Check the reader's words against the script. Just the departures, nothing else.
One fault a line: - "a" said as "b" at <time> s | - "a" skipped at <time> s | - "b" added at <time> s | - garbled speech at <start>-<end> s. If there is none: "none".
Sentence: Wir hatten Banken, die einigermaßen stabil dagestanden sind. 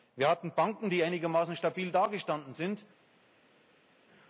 none